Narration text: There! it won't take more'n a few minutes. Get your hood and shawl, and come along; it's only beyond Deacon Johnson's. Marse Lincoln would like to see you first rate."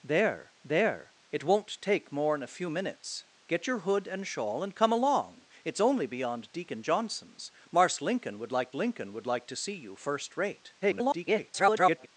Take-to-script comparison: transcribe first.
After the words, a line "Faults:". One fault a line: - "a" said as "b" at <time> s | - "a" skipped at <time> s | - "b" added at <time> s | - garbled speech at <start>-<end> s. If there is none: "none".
There there! it won't take more'n a few minutes. Get your hood and shawl, and come along; it's only beyond Deacon Johnson's. Marse Lincoln would like Lincoln would like to see you first rate." [garbled]
Faults:
- "there" added at 0.6 s
- "Lincoln would like" added at 8.7 s
- garbled speech at 10.8-12.1 s